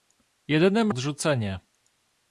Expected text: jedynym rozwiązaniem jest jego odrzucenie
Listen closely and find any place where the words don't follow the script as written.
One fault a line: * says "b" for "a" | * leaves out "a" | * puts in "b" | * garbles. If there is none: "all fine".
* leaves out "rozwiązaniem jest jego"